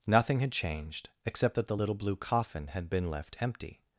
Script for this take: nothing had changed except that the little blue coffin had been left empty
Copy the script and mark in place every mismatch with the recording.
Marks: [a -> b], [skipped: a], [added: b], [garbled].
nothing had changed except that the little blue coffin had been left empty